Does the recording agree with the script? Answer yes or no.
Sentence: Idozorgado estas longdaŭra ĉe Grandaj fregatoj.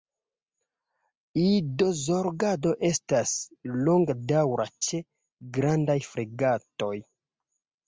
yes